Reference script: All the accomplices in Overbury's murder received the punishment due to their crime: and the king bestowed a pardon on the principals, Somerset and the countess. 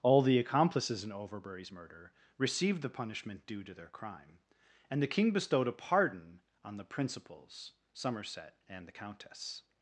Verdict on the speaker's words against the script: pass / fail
pass